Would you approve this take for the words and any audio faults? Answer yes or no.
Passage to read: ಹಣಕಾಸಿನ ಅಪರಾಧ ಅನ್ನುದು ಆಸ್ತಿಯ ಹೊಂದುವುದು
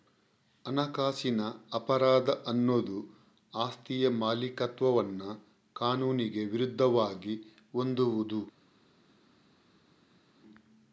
no